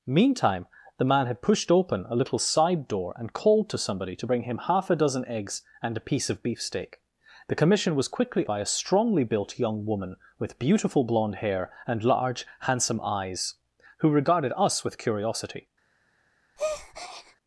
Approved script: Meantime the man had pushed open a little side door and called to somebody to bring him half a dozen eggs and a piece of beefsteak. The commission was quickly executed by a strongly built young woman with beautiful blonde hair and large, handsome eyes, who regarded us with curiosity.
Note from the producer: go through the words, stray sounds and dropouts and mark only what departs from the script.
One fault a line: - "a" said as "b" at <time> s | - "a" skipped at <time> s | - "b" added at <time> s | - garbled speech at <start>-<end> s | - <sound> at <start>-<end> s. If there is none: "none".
- "executed" skipped at 8.5 s
- breath at 16.6-17.4 s